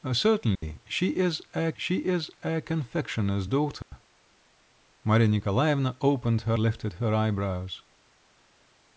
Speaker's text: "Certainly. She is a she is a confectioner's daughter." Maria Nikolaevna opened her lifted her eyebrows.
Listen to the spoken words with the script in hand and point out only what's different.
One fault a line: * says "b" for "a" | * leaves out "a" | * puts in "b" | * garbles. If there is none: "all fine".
all fine